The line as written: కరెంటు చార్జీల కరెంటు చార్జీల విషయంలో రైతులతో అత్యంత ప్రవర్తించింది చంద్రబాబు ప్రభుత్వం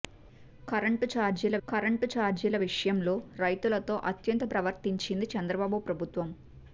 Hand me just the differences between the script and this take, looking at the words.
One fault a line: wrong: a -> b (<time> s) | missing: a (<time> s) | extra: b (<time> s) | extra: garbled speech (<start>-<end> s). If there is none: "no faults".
no faults